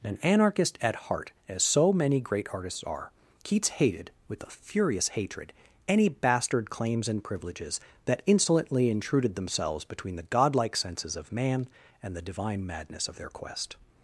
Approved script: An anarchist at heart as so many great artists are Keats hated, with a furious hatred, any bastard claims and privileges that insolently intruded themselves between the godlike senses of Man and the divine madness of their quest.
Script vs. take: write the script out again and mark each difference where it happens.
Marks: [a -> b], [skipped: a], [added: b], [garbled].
An anarchist at heart as so many great artists are Keats hated, with a furious hatred, any bastard claims and privileges that insolently intruded themselves between the godlike senses of Man and the divine madness of their quest.